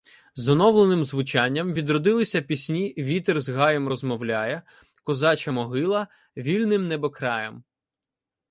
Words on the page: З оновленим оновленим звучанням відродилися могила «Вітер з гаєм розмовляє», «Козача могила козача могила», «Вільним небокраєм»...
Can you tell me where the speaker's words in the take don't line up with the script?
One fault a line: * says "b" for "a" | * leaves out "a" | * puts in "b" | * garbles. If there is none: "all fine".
* leaves out "оновленим"
* says "пісні" for "могила"
* leaves out "козача могила"